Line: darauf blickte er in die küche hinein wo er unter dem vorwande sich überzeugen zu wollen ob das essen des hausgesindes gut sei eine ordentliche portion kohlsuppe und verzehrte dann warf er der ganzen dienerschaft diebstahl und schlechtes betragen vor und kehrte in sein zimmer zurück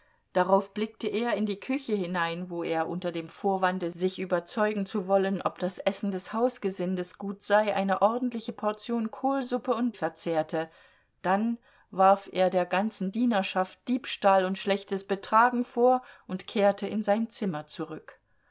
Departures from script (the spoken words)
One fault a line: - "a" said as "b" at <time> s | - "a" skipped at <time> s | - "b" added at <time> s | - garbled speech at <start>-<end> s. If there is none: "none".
none